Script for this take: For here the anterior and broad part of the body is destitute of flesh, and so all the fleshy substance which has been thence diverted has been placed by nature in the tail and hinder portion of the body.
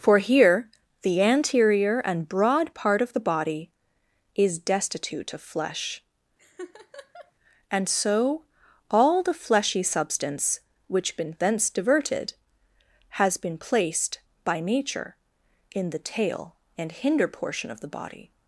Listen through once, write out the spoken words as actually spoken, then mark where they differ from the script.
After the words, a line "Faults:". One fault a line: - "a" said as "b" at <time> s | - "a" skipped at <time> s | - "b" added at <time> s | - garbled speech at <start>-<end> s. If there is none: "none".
For here the anterior and broad part of the body is destitute of flesh, and so all the fleshy substance which been thence diverted has been placed by nature in the tail and hinder portion of the body.
Faults:
- "has" skipped at 11.2 s